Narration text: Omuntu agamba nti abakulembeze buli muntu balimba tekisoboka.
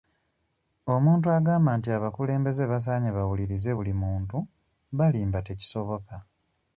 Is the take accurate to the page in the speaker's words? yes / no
no